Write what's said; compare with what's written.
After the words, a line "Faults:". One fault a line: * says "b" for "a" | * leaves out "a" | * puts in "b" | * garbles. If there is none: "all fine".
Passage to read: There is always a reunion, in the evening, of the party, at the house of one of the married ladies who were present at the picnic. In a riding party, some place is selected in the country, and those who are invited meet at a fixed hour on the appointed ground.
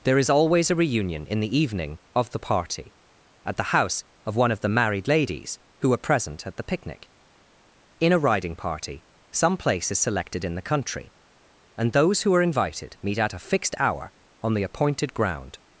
There is always a reunion, in the evening, of the party, at the house of one of the married ladies who were present at the picnic. In a riding party, some place is selected in the country, and those who are invited meet at a fixed hour on the appointed ground.
Faults:
all fine